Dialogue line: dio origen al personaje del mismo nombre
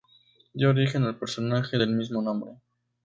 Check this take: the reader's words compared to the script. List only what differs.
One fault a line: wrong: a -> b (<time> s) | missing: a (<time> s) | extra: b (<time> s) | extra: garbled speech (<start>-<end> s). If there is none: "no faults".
no faults